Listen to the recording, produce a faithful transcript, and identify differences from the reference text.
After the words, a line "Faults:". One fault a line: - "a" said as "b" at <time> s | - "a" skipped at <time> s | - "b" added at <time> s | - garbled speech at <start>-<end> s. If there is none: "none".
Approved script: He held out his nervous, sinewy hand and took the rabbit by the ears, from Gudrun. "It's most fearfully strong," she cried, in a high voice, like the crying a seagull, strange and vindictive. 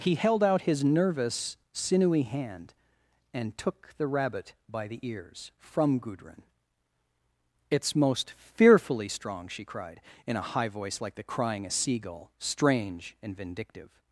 He held out his nervous, sinewy hand and took the rabbit by the ears, from Gudrun. "It's most fearfully strong," she cried, in a high voice, like the crying a seagull, strange and vindictive.
Faults:
none